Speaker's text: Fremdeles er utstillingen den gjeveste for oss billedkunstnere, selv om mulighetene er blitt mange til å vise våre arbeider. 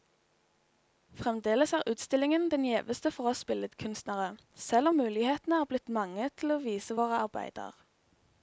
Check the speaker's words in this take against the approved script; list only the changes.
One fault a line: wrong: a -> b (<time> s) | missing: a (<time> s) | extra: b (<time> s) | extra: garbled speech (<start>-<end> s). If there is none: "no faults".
no faults